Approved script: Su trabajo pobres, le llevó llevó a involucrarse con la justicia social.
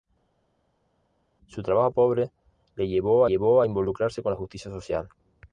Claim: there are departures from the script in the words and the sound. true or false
false